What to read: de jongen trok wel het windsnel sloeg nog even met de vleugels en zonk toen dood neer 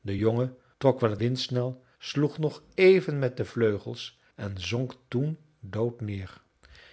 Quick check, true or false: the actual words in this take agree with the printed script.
true